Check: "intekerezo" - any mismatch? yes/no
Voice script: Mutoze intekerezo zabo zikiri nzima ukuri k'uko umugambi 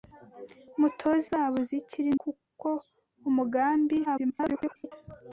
yes